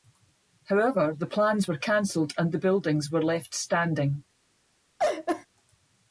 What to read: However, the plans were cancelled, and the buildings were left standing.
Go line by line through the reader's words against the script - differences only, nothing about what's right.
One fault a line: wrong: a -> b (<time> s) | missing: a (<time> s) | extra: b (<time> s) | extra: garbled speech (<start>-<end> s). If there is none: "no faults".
no faults